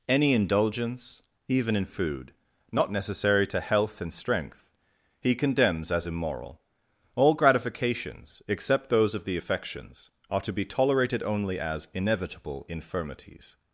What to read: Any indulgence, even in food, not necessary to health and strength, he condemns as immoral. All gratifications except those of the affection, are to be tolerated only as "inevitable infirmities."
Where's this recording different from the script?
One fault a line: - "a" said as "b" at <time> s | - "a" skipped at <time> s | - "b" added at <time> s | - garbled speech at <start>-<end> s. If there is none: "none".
- "affection" said as "affections" at 9.4 s